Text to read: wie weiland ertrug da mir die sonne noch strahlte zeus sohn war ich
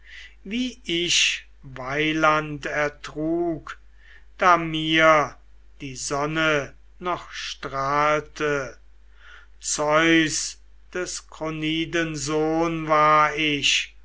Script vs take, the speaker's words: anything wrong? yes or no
yes